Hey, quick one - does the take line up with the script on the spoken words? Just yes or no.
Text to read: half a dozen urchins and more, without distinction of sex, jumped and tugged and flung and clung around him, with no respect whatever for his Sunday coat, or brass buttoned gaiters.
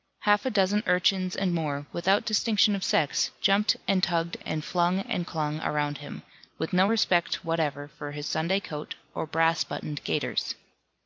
yes